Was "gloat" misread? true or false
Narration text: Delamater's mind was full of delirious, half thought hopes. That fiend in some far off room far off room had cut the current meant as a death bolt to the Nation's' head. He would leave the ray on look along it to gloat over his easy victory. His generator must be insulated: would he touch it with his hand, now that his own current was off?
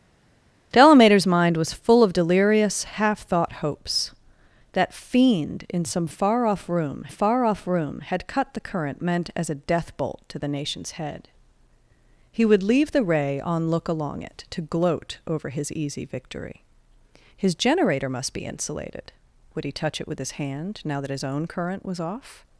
false